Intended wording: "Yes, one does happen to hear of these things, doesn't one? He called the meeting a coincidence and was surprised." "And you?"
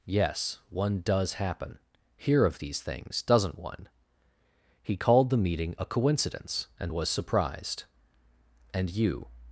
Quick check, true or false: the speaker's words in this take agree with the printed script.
false